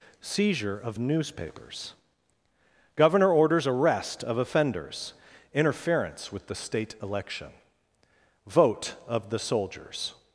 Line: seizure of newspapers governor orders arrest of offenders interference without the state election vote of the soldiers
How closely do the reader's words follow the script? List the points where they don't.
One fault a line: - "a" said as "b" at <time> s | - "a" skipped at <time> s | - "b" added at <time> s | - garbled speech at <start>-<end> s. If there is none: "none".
- "without" said as "with" at 6.3 s